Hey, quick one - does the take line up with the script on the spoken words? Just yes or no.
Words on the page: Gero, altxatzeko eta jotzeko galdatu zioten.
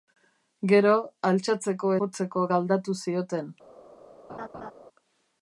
no